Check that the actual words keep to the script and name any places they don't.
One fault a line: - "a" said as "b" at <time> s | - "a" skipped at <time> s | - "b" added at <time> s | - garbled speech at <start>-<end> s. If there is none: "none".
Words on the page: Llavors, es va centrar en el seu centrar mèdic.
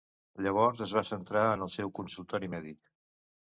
- "centrar" said as "consultori" at 2.0 s